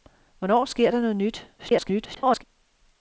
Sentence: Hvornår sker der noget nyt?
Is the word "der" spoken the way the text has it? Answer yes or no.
yes